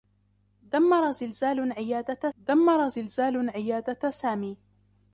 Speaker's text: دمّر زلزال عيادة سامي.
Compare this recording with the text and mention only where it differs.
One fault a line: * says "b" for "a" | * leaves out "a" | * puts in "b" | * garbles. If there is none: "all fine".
* puts in "دمّر زلزال عيادة"